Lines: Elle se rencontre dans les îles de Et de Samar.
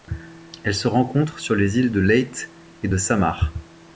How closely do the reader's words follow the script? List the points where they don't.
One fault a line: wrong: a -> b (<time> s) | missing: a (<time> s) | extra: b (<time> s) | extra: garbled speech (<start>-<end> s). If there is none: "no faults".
wrong: dans -> sur (1.4 s)
extra: Leyte (2.0 s)